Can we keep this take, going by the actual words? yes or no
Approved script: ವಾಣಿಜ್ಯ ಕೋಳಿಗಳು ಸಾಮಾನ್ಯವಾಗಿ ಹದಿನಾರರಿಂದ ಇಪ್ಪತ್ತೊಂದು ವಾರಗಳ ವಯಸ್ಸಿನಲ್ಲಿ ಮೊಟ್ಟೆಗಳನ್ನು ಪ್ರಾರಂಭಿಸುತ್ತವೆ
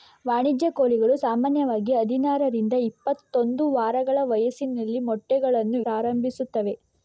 yes